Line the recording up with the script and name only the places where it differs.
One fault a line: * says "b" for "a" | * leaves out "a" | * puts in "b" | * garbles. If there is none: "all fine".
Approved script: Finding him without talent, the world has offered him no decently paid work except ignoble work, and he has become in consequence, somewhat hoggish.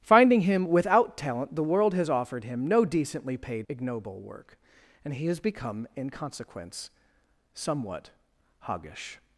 * leaves out "work except"